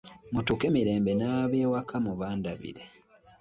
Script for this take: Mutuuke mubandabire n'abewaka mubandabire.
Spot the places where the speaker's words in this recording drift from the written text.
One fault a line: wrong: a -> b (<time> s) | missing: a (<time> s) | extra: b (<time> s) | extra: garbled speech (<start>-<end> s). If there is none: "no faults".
wrong: mubandabire -> mirembe (0.7 s)